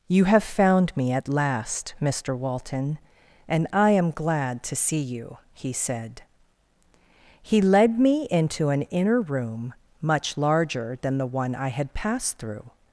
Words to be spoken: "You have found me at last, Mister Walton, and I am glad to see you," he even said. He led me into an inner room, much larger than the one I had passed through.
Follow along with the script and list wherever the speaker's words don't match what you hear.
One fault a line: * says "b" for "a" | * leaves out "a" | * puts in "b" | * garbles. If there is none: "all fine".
* leaves out "even"